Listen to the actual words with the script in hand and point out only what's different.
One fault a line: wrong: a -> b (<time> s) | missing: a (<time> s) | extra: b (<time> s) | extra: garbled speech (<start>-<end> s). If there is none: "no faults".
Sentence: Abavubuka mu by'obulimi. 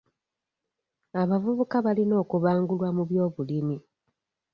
extra: balina okubangulwa (1.9 s)